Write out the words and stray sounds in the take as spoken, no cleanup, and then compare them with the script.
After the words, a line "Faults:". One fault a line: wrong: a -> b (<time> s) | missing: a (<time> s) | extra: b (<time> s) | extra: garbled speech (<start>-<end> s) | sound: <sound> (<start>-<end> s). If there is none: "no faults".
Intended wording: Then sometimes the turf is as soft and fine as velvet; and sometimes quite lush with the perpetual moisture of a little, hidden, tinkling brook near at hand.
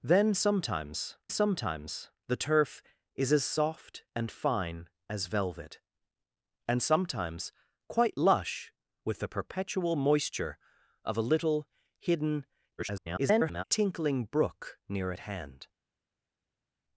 Then sometimes sometimes the turf is as soft and fine as velvet; and sometimes quite lush with the perpetual moisture of a little, hidden, [garbled] tinkling brook near at hand.
Faults:
extra: sometimes (1.3 s)
extra: garbled speech (12.8-13.6 s)